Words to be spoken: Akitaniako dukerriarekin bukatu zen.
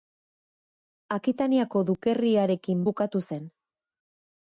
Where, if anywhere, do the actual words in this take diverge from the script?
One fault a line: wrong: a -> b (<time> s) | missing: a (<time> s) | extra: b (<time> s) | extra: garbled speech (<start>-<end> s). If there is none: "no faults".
no faults